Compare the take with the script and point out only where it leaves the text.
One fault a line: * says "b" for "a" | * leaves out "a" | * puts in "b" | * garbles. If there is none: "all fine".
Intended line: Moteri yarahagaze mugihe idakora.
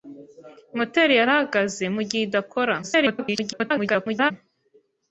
* garbles